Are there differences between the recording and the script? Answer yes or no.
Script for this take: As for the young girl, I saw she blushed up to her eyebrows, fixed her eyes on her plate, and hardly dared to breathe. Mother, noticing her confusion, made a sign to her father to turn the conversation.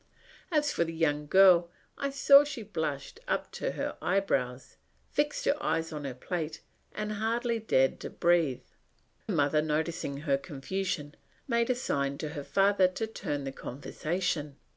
no